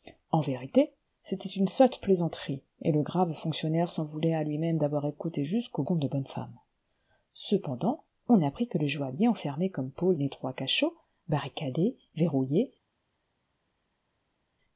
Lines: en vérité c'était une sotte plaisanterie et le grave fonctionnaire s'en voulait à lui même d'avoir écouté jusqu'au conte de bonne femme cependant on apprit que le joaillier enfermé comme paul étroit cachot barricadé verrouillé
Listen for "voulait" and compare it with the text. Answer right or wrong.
right